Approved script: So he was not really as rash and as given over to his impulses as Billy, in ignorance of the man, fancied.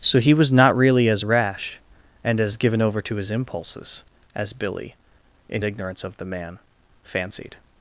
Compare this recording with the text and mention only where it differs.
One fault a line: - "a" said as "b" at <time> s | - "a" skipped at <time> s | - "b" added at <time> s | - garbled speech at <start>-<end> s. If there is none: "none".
none